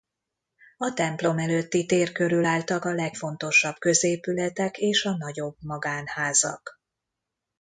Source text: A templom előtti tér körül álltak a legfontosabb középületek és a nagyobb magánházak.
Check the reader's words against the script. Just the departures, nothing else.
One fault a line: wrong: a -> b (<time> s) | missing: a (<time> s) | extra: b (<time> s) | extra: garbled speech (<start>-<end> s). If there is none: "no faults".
no faults